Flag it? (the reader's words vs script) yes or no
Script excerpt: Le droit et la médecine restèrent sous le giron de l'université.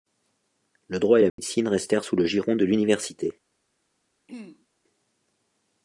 no